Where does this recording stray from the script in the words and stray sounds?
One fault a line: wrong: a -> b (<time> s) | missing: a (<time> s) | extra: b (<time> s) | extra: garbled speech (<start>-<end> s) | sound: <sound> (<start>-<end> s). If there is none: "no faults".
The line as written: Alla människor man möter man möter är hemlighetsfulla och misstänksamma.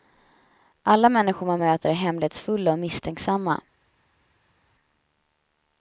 missing: man möter (1.9 s)